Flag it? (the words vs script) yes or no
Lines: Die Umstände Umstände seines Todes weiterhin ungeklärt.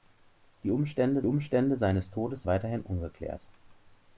no